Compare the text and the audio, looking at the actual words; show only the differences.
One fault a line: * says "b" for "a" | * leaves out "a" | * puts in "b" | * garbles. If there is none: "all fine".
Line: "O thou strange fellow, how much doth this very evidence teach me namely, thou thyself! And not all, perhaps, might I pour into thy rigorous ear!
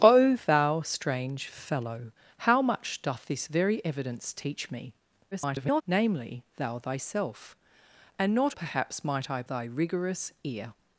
* garbles
* leaves out "all"
* leaves out "pour into"